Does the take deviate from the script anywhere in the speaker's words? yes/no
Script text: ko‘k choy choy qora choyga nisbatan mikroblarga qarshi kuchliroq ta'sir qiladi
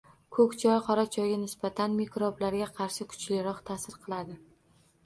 yes